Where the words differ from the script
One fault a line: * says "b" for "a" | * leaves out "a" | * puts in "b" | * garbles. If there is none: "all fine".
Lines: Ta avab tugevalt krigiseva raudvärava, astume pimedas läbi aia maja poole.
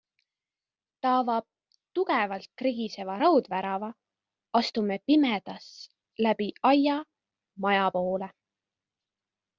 all fine